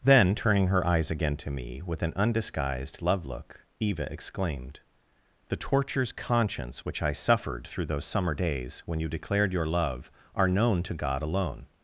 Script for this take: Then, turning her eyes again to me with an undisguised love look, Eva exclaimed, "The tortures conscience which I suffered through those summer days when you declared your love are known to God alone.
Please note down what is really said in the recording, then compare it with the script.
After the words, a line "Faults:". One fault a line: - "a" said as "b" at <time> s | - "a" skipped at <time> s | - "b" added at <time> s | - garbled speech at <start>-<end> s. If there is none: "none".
Then, turning her eyes again to me with an undisguised love look, Eva exclaimed, "The tortures conscience which I suffered through those summer days when you declared your love are known to God alone.
Faults:
none